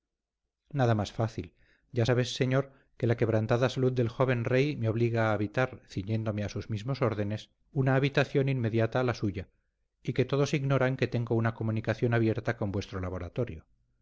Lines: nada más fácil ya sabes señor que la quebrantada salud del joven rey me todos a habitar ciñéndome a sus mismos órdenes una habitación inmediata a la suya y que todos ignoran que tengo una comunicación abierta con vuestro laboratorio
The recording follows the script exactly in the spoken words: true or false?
false